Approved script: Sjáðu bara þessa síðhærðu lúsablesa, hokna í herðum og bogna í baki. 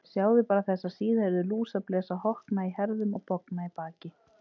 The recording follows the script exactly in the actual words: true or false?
true